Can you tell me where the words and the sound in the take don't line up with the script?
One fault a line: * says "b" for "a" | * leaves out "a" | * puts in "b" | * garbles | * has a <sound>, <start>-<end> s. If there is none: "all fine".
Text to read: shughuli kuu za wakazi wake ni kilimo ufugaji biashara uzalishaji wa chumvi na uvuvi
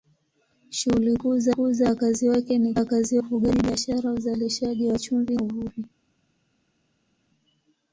* puts in "kuu za"
* says "wakazi" for "kilimo"
* leaves out "na"